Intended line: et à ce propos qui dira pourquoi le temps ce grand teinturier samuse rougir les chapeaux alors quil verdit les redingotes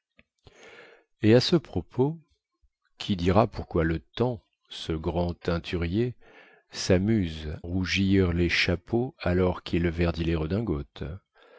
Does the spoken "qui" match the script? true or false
true